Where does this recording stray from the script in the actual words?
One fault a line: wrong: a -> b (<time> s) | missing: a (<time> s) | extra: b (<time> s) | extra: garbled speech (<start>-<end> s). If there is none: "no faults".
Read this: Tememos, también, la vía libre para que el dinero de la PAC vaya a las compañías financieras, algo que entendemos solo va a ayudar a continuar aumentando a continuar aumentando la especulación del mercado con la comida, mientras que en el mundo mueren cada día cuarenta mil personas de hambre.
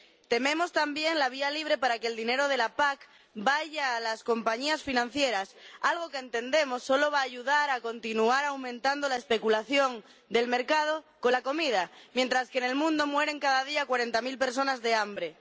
missing: a continuar aumentando (9.1 s)